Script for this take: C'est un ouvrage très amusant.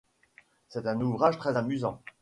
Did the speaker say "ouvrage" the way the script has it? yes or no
yes